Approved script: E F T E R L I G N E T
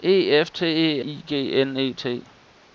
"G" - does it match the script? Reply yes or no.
yes